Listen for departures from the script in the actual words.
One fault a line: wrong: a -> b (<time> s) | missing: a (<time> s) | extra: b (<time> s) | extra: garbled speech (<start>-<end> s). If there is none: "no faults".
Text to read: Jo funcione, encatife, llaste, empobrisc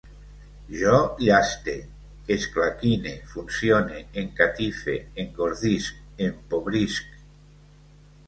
extra: llaste esclaquine (1.2 s)
wrong: llaste -> engordisc (5.2 s)